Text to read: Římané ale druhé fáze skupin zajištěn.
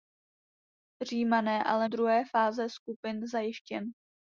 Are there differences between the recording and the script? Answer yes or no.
no